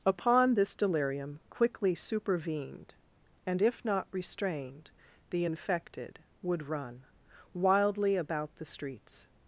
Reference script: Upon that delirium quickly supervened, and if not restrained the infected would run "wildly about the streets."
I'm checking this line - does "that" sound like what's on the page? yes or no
no